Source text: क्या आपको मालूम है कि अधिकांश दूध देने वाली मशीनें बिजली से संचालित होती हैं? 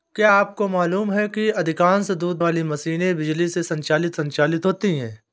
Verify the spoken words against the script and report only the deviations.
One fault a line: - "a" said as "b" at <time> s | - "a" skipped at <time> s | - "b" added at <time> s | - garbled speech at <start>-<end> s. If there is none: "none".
- "देने" skipped at 2.4 s
- "संचालित" added at 4.1 s